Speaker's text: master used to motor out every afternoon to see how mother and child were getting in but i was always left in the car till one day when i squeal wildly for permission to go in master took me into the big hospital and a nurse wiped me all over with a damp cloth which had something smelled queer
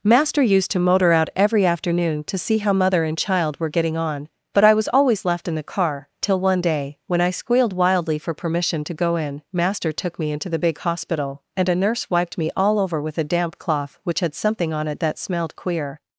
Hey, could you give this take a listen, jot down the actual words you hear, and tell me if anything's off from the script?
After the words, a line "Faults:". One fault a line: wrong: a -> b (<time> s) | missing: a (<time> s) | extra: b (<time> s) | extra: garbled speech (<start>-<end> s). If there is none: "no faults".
master used to motor out every afternoon to see how mother and child were getting on but i was always left in the car till one day when i squealed wildly for permission to go in master took me into the big hospital and a nurse wiped me all over with a damp cloth which had something on it that smelled queer
Faults:
wrong: in -> on (4.0 s)
wrong: squeal -> squealed (7.3 s)
extra: on it that (14.7 s)